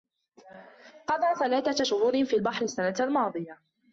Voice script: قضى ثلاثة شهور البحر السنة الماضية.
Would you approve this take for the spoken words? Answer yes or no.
no